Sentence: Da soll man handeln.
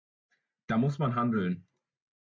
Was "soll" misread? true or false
true